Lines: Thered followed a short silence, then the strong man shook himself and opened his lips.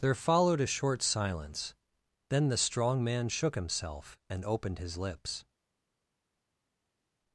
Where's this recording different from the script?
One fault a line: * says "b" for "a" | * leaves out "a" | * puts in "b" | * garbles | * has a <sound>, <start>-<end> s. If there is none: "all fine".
* says "There" for "Thered"